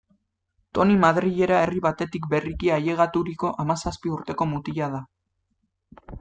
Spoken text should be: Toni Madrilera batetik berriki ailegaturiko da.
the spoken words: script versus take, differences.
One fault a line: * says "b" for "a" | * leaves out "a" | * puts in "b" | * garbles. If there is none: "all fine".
* puts in "herri"
* puts in "hamazazpi urteko mutila"